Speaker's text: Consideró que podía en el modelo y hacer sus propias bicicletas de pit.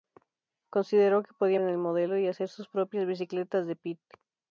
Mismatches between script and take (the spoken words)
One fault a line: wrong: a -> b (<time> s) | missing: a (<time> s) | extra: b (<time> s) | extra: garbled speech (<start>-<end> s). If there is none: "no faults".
no faults